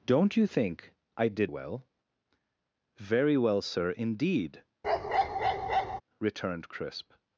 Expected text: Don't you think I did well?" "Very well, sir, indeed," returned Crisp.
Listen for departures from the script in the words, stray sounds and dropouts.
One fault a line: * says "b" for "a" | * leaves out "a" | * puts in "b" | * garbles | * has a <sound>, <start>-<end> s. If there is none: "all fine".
* has a bark, 4.8-6.0 s